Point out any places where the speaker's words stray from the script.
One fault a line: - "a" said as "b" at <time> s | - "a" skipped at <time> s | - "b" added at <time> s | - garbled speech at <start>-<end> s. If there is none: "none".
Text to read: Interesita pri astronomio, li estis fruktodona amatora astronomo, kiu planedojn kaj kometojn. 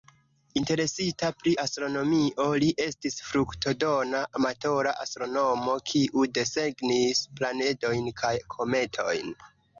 - "desegnis" added at 6.4 s